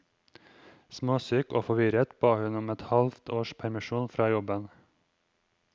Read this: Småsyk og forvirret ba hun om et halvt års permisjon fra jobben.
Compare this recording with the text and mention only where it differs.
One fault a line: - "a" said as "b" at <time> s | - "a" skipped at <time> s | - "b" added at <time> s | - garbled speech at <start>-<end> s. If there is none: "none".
none